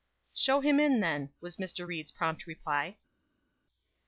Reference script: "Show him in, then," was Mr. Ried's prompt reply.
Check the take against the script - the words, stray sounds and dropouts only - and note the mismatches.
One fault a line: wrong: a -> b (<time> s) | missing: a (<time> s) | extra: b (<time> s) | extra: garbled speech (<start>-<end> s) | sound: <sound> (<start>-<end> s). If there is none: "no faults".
no faults